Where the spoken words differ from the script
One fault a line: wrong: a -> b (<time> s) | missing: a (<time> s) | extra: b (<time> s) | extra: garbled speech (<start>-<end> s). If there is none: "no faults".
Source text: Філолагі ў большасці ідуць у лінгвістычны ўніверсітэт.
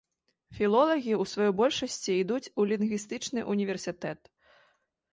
extra: сваёй (1.3 s)